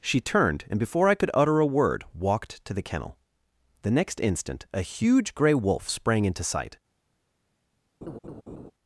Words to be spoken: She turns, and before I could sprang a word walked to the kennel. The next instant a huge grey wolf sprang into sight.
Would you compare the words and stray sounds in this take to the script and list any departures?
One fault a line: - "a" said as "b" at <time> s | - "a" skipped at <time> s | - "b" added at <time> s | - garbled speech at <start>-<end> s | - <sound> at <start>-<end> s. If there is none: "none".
- "turns" said as "turned" at 0.2 s
- "sprang" said as "utter" at 1.3 s
- laugh at 8.0-8.7 s